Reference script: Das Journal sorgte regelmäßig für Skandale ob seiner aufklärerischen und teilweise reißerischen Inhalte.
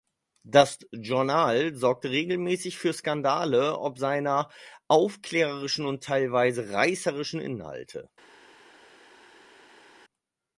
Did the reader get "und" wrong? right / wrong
right